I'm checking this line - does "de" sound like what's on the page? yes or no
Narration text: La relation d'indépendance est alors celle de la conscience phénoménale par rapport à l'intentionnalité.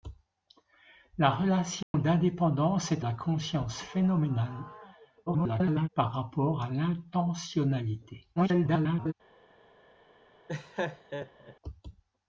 no